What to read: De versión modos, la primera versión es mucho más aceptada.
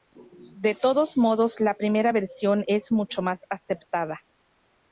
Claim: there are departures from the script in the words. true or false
true